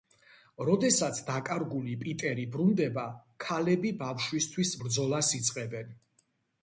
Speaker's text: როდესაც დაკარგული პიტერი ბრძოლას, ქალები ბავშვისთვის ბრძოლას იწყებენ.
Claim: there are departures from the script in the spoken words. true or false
true